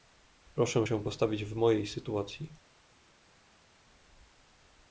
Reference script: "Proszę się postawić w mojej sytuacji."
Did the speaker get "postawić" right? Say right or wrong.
right